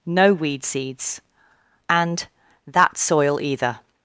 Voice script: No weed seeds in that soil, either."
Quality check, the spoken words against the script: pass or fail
fail